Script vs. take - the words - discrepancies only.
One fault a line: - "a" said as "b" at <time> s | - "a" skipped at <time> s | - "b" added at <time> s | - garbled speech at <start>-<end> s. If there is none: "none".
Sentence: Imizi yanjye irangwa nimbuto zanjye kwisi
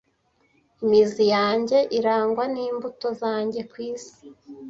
none